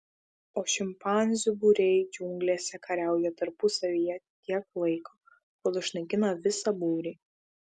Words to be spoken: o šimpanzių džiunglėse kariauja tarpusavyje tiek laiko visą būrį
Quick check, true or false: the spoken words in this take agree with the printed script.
false